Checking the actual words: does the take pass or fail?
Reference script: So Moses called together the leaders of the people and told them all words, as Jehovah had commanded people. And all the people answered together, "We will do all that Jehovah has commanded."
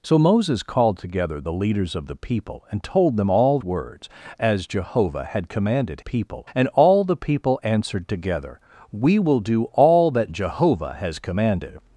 pass